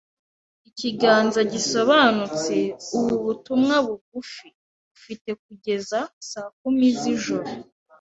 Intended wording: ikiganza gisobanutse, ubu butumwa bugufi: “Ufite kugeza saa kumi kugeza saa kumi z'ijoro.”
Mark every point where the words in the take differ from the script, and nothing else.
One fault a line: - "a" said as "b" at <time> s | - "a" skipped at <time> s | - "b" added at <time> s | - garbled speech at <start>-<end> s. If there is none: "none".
- "kugeza saa kumi" skipped at 6.9 s